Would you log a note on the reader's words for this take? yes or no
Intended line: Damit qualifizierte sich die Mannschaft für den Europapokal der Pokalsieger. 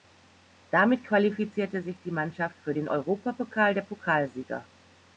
no